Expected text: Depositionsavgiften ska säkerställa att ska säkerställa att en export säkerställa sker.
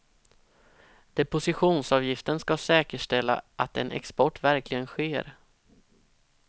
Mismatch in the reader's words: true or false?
true